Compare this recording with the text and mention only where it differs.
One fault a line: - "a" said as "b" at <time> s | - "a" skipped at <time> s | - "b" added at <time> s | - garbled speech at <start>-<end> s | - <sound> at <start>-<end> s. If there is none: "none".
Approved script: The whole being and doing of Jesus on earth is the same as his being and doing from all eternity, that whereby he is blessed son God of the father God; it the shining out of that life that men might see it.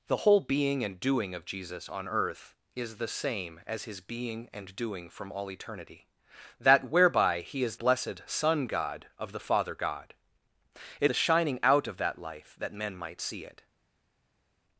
none